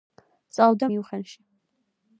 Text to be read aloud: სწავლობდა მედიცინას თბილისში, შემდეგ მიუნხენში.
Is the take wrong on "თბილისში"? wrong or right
wrong